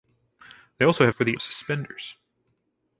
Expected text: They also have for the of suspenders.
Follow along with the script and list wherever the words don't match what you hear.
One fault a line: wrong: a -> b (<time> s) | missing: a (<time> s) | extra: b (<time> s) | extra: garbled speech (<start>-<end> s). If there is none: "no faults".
no faults